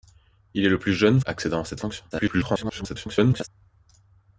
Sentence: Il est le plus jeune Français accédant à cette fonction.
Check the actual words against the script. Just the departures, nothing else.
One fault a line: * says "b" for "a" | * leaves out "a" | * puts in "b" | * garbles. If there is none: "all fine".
* leaves out "Français"
* garbles